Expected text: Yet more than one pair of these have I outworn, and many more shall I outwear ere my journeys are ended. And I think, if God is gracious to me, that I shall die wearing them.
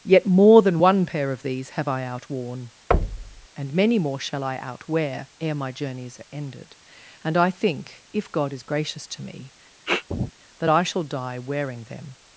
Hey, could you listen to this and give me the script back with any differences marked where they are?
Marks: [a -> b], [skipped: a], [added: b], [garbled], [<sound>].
Yet more than one pair of these have I outworn, [thud] and many more shall I outwear ere my journeys are ended. And I think, if God is gracious to me, [sniff] that I shall die wearing them.